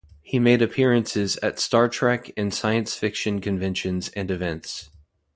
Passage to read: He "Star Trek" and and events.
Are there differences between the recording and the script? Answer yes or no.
yes